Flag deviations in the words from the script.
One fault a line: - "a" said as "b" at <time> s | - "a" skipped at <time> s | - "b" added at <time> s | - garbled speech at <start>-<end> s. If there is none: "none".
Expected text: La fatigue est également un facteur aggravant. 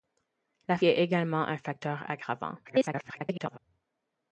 - "fatigue" skipped at 0.8 s
- garbled speech at 2.6-3.6 s